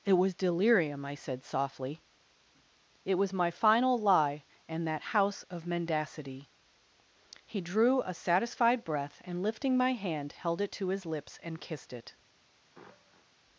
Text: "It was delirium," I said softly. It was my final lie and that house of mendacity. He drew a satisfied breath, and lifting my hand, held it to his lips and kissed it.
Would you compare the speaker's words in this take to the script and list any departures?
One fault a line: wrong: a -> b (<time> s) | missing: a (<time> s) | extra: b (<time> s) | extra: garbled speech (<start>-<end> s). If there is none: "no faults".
no faults